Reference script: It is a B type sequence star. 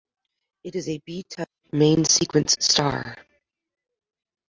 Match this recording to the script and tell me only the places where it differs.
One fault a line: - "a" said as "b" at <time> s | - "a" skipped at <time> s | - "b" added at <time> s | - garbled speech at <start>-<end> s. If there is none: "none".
- "main" added at 1.7 s